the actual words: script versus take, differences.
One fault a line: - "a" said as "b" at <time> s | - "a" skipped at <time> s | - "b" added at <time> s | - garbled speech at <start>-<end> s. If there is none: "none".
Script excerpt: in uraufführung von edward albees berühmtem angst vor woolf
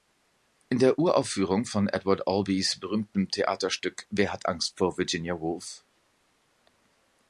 - "der" added at 0.8 s
- "theaterstück wer hat" added at 3.3 s
- "virginia" added at 5.0 s